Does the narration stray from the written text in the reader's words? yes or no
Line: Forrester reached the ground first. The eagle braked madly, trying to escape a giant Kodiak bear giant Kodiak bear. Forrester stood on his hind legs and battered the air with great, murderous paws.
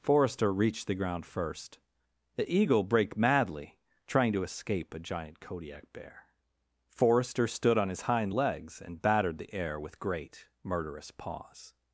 yes